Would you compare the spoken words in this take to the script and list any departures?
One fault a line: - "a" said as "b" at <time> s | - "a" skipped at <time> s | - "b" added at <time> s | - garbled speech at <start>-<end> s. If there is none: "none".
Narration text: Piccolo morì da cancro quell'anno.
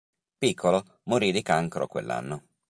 - "da" said as "di" at 1.3 s